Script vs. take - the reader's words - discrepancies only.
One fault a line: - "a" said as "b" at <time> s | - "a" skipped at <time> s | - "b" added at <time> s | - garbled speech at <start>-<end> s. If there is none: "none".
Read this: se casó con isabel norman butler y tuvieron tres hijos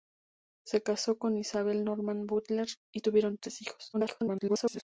- garbled speech at 3.9-4.8 s